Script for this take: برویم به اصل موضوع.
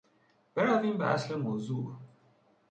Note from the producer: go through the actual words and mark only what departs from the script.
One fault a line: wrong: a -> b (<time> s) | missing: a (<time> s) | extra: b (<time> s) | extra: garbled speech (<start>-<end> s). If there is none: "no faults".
no faults